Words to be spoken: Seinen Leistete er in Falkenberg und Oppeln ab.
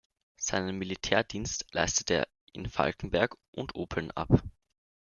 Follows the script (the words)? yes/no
no